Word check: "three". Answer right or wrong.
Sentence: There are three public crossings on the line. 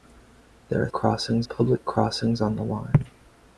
wrong